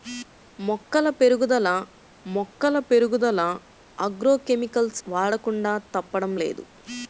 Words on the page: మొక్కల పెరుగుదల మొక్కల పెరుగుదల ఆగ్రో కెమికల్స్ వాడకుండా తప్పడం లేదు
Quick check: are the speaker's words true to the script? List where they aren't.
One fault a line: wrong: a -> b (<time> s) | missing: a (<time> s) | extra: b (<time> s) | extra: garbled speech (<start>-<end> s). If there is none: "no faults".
no faults